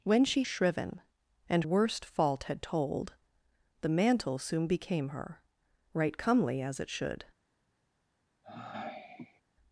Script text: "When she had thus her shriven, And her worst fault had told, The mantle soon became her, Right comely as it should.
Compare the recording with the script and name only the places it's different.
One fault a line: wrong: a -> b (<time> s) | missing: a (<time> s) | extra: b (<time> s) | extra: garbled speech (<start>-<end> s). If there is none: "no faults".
missing: had thus her (0.4 s)
missing: her (1.6 s)